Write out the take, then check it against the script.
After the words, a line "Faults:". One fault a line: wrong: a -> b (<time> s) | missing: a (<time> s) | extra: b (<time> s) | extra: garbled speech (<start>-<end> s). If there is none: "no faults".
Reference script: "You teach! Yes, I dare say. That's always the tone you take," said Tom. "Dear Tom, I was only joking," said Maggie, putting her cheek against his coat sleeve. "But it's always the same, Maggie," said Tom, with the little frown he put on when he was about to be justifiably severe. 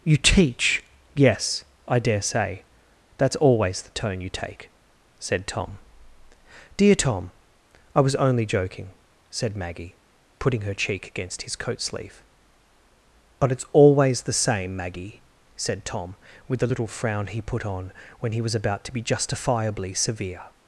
"You teach! Yes, I dare say. That's always the tone you take," said Tom. "Dear Tom, I was only joking," said Maggie, putting her cheek against his coat sleeve. "But it's always the same, Maggie," said Tom, with the little frown he put on when he was about to be justifiably severe.
Faults:
no faults